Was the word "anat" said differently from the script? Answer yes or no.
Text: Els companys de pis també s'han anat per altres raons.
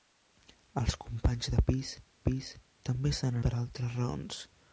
yes